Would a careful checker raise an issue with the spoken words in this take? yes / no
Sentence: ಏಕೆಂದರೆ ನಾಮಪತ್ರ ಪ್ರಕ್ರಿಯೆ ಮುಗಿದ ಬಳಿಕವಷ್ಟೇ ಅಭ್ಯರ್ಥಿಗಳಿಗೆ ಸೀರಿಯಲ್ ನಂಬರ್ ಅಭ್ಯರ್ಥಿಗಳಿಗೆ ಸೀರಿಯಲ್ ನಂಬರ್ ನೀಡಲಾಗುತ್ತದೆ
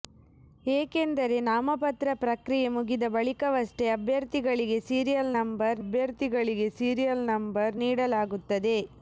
no